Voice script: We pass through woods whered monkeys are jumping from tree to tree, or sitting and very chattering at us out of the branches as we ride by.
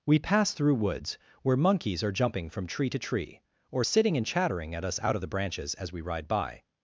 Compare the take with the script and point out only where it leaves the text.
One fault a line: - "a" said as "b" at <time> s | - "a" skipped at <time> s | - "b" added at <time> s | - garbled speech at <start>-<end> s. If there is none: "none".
- "whered" said as "where" at 1.4 s
- "very" skipped at 4.3 s